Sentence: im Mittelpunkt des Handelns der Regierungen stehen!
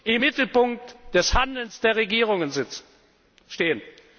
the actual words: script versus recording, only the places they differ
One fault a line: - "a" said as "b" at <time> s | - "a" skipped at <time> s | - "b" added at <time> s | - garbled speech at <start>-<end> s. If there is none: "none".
none